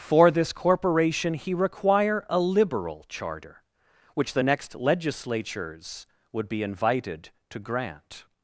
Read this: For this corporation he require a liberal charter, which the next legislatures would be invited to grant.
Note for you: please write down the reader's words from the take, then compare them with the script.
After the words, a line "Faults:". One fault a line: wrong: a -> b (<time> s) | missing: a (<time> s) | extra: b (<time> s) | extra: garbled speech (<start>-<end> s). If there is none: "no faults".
For this corporation he require a liberal charter, which the next legislatures would be invited to grant.
Faults:
no faults